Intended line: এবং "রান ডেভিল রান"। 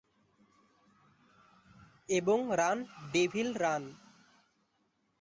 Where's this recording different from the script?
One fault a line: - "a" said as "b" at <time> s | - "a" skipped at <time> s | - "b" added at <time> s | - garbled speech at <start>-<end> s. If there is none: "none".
none